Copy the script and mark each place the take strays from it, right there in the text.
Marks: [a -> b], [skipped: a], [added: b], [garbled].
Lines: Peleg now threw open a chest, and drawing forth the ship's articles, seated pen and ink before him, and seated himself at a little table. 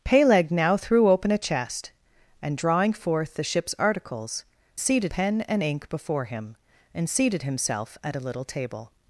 Peleg now threw open a chest, and drawing forth the ship's articles, seated pen and ink before him, and seated himself at a little table.